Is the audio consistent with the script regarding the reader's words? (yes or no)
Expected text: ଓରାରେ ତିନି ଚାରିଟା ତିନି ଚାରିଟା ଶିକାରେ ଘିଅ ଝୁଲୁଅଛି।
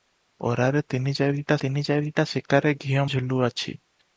yes